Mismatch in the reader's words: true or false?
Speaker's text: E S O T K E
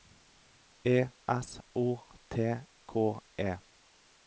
false